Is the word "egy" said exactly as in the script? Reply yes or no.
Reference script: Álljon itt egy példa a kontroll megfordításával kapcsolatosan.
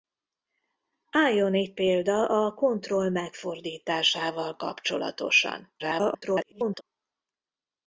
no